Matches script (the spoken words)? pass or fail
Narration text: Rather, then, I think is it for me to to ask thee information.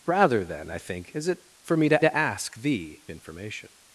pass